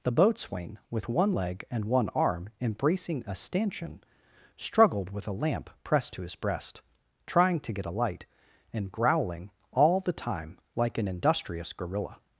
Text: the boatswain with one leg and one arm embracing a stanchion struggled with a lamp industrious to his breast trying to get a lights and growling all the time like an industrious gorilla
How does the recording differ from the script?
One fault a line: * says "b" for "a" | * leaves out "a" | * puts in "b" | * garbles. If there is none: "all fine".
* says "pressed" for "industrious"
* says "light" for "lights"